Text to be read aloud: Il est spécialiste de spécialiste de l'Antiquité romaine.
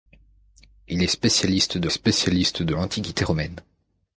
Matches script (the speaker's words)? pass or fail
pass